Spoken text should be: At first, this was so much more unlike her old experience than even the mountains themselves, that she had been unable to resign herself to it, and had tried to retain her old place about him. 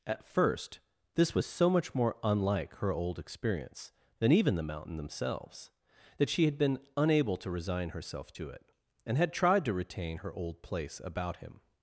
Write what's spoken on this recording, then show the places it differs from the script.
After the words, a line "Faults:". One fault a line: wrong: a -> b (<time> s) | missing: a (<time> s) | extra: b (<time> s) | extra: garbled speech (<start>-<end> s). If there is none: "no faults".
At first, this was so much more unlike her old experience than even the mountain themselves, that she had been unable to resign herself to it, and had tried to retain her old place about him.
Faults:
wrong: mountains -> mountain (4.6 s)